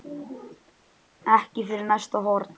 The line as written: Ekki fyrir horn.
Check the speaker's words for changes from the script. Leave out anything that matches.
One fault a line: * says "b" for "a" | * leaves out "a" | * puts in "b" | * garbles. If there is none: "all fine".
* puts in "næsta"